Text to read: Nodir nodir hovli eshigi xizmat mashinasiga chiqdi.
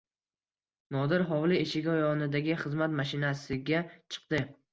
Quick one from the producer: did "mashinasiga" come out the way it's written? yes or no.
yes